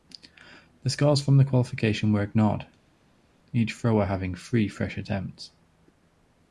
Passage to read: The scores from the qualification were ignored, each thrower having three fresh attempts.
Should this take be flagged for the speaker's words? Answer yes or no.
no